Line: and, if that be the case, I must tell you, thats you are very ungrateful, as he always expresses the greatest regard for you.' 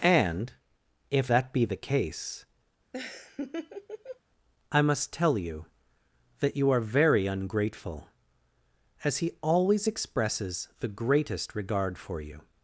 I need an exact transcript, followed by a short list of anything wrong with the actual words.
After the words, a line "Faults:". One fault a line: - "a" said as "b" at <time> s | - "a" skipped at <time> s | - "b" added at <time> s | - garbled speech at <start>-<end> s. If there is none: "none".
and, if that be the case, I must tell you, that you are very ungrateful, as he always expresses the greatest regard for you.'
Faults:
- "thats" said as "that" at 6.4 s